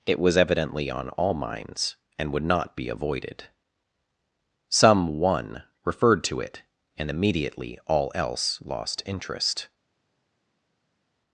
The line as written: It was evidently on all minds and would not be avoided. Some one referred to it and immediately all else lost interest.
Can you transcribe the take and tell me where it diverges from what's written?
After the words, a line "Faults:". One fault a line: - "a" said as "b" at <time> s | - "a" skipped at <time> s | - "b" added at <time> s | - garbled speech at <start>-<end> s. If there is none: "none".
It was evidently on all minds and would not be avoided. Some one referred to it and immediately all else lost interest.
Faults:
none